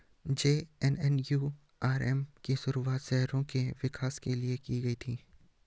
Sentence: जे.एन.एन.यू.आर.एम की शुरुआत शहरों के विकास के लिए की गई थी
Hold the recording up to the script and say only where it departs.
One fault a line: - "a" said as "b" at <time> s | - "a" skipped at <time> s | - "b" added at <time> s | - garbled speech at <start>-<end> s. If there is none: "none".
none